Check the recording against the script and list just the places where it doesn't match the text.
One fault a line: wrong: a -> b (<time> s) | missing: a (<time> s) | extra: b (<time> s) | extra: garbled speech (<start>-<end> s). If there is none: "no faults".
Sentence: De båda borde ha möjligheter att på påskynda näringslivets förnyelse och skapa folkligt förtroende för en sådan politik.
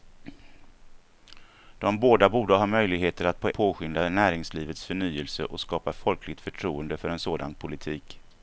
no faults